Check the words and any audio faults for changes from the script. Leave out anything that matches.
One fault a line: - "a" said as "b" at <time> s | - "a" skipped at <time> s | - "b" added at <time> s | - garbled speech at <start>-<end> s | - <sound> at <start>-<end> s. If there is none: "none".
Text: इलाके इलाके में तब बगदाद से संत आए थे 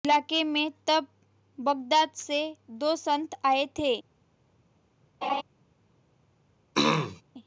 - "इलाके" skipped at 0.4 s
- "दो" added at 2.8 s
- laugh at 5.2-5.4 s
- throat clearing at 6.7-7.2 s